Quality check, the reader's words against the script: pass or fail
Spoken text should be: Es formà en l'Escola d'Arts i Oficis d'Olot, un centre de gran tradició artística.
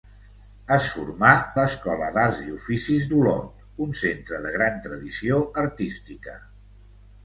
fail